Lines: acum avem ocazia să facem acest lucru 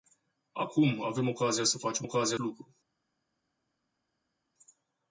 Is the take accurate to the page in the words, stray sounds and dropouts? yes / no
no